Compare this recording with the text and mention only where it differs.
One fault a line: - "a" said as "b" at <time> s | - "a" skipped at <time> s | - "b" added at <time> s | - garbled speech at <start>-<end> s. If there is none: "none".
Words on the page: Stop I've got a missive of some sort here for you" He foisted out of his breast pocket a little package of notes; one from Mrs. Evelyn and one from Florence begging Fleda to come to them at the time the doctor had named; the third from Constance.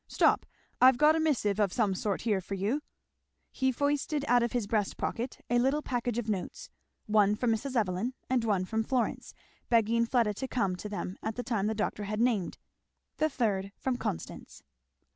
none